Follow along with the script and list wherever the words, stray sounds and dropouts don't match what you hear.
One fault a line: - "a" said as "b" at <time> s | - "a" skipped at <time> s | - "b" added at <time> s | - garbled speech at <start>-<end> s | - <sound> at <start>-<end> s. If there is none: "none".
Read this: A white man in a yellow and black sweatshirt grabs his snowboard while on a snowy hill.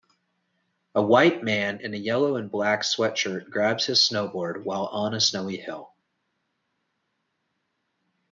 none